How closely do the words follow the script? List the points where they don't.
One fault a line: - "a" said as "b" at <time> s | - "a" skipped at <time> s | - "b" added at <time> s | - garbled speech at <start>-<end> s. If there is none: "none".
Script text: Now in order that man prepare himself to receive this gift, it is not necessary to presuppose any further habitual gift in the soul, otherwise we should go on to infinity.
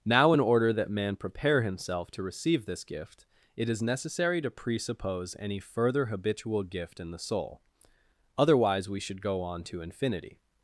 - "not" skipped at 3.8 s